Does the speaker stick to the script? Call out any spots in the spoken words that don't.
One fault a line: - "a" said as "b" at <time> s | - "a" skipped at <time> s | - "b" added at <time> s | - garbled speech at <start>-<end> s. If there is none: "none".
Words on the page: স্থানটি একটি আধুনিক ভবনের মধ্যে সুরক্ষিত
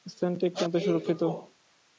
- "আধুনিক ভবনের" skipped at 0.6 s